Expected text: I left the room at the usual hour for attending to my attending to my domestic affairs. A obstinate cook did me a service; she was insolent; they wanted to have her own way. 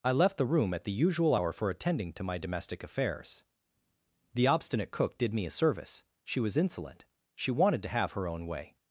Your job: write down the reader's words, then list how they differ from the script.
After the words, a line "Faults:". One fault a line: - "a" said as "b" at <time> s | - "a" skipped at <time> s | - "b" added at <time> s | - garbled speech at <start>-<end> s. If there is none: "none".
I left the room at the usual hour for attending to my domestic affairs. The obstinate cook did me a service; she was insolent; she wanted to have her own way.
Faults:
- "attending to my" skipped at 2.4 s
- "A" said as "The" at 4.3 s
- "they" said as "she" at 7.3 s